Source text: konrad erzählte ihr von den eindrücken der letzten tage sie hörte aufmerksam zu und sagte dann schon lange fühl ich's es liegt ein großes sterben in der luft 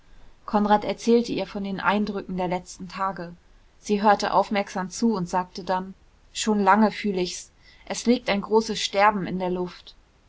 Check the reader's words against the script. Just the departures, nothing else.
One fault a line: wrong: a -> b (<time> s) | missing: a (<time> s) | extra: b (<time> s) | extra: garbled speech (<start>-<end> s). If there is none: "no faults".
no faults